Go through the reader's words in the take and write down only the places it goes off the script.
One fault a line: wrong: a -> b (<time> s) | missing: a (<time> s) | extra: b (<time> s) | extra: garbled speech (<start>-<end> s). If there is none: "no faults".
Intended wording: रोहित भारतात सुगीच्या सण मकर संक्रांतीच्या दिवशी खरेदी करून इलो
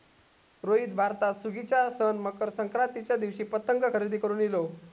extra: पतंग (3.4 s)